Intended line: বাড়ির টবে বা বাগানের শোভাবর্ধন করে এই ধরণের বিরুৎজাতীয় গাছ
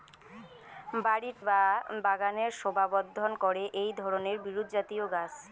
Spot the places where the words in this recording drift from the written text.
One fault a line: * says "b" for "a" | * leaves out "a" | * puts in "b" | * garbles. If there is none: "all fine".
* leaves out "টবে"